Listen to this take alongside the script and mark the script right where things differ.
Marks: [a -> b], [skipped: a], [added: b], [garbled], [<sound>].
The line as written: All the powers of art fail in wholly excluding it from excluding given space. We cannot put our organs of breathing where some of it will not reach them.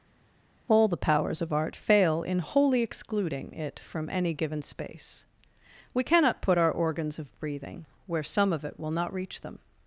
All the powers of art fail in wholly excluding it from [excluding -> any] given space. We cannot put our organs of breathing where some of it will not reach them.